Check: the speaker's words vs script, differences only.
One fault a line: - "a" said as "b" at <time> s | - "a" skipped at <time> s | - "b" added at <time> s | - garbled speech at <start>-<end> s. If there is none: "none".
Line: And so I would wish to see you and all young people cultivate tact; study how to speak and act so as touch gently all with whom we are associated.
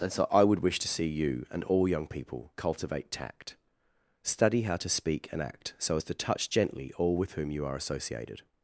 - "to" added at 6.0 s
- "we" said as "you" at 7.5 s